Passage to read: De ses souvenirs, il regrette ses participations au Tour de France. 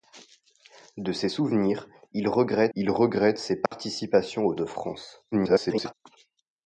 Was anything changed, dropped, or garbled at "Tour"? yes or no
yes